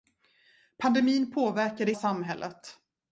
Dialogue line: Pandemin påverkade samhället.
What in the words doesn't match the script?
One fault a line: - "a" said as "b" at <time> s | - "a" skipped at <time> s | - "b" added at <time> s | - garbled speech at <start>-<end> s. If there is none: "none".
none